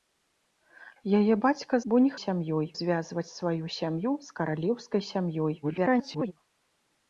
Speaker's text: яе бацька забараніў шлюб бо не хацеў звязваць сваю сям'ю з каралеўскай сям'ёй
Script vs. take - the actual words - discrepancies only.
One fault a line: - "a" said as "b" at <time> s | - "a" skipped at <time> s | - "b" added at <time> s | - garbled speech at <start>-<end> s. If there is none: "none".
- "забараніў шлюб" skipped at 1.8 s
- "хацеў" said as "сям'ёй" at 2.2 s
- garbled speech at 5.6-6.3 s